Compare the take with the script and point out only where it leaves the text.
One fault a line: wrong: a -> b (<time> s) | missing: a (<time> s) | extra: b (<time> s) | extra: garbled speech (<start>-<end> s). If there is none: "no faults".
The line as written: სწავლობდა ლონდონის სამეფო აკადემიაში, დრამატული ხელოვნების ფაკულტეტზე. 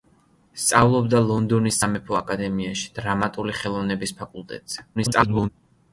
extra: garbled speech (5.0-5.5 s)